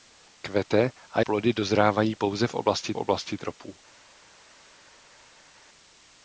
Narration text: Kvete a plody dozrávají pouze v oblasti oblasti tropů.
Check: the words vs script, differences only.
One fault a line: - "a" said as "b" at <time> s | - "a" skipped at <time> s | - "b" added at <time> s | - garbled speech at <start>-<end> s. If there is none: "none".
none